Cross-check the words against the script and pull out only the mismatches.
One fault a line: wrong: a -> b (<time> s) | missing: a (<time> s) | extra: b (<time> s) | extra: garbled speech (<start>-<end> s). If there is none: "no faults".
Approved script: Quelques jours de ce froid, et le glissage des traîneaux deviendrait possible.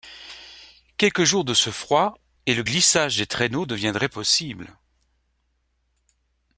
no faults